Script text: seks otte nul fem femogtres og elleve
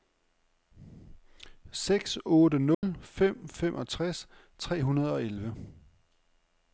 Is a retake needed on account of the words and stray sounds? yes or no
yes